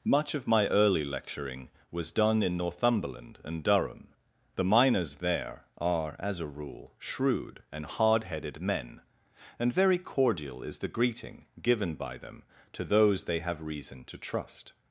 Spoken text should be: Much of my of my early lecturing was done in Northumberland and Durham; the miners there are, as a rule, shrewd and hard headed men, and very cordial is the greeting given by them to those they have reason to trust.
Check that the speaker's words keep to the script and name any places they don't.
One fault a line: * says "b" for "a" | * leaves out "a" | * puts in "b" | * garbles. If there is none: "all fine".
* leaves out "of my"